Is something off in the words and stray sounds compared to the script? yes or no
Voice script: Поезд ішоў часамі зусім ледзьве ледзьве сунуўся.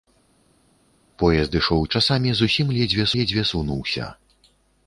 no